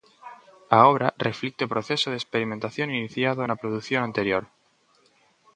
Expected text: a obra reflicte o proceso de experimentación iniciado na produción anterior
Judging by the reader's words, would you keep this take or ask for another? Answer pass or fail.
pass